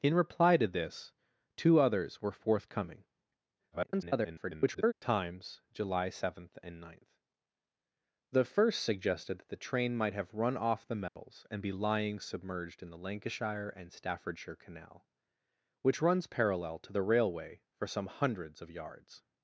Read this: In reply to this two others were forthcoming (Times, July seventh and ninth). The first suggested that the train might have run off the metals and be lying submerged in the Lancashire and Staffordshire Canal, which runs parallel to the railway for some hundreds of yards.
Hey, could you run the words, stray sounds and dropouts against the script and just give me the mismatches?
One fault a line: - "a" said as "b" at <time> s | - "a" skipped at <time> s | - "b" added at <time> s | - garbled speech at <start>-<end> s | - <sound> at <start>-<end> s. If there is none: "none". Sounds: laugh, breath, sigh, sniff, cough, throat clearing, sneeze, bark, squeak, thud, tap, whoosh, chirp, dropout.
- garbled speech at 3.7-4.9 s
- dropout at 11.1-11.2 s